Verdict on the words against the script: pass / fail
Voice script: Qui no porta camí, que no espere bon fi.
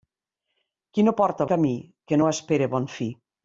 pass